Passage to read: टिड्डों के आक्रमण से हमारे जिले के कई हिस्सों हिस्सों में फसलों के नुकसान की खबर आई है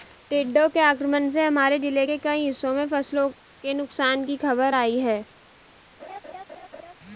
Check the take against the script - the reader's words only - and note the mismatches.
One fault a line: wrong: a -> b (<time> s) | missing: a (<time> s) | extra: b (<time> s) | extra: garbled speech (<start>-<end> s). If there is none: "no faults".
missing: हिस्सों (2.7 s)